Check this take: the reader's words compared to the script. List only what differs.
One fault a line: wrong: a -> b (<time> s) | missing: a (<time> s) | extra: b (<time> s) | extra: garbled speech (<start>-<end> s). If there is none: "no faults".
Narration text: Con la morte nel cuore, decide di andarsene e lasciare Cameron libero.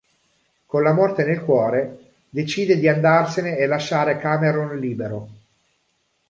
no faults